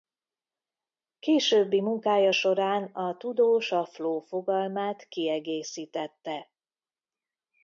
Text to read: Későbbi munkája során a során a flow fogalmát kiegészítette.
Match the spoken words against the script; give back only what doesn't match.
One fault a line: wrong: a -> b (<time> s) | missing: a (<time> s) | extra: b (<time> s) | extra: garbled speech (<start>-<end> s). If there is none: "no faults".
wrong: során -> tudós (3.2 s)